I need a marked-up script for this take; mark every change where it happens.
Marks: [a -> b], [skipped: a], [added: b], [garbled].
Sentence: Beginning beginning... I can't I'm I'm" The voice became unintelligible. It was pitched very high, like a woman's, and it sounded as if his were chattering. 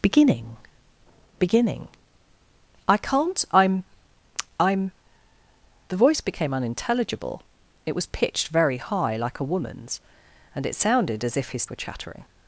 Beginning beginning... I can't I'm I'm" The voice became unintelligible. It was pitched very high, like a woman's, and it sounded as if his were chattering.